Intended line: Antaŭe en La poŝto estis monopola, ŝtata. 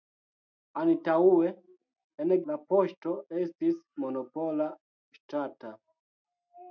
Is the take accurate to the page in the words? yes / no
yes